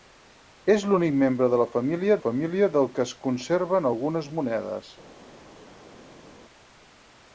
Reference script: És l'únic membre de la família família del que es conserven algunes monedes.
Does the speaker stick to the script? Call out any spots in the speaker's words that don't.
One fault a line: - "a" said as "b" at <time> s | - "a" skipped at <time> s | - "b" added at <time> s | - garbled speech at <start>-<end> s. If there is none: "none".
none